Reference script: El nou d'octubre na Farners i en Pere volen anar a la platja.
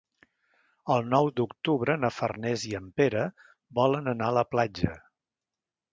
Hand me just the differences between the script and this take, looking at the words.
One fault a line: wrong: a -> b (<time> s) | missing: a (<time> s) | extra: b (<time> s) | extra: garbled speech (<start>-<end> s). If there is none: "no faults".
no faults